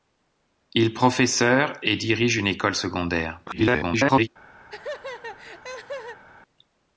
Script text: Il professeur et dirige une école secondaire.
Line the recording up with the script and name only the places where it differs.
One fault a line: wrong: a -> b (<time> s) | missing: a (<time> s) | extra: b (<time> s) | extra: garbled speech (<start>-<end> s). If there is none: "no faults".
extra: garbled speech (3.5-4.3 s)